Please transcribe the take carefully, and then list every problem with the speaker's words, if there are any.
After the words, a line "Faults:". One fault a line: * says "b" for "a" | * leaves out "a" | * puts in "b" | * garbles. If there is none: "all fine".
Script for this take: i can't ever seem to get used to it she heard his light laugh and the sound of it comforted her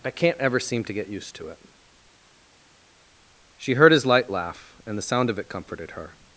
i can't ever seem to get used to it she heard his light laugh and the sound of it comforted her
Faults:
all fine